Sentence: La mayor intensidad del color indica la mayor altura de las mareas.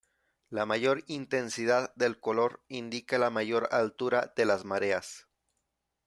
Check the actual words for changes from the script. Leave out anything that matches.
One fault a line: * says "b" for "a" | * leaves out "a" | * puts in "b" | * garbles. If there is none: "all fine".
all fine